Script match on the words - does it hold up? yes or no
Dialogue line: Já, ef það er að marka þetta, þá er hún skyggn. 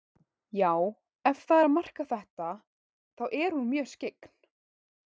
no